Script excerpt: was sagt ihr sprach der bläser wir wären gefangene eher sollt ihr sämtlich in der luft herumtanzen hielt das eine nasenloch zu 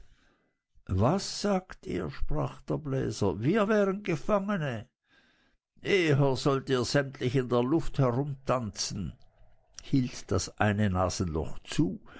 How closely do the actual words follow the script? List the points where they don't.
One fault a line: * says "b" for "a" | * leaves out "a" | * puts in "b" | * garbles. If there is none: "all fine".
all fine